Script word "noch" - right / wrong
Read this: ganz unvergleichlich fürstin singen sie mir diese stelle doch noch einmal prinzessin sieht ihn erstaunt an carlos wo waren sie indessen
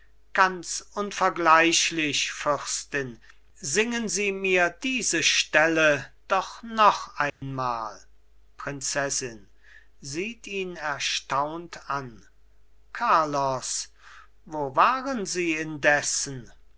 right